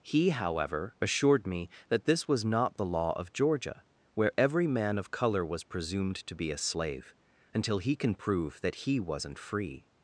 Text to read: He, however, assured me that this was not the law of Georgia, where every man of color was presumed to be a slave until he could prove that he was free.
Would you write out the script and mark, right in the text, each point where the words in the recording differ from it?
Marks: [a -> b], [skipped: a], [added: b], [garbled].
He, however, assured me that this was not the law of Georgia, where every man of color was presumed to be a slave until he [could -> can] prove that he [was -> wasn't] free.